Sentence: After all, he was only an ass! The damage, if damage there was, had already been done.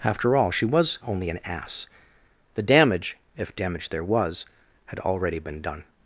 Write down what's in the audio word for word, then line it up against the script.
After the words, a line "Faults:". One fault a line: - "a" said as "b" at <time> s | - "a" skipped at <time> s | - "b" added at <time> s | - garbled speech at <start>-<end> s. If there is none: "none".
After all, she was only an ass! The damage, if damage there was, had already been done.
Faults:
- "he" said as "she" at 0.5 s